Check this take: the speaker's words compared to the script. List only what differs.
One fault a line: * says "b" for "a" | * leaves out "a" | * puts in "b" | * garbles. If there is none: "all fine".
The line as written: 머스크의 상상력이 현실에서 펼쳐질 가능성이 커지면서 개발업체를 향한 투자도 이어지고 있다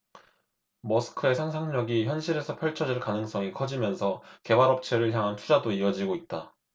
all fine